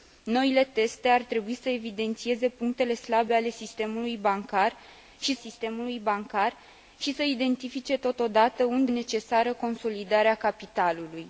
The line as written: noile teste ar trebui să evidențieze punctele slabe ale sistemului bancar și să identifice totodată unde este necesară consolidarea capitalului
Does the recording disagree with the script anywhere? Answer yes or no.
yes